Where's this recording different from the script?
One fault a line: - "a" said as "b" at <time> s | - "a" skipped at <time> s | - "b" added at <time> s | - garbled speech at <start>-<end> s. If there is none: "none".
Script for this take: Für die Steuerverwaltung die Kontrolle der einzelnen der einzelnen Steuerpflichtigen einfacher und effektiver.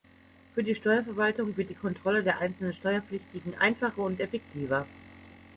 - "wird" added at 1.6 s
- "der einzelnen" skipped at 2.7 s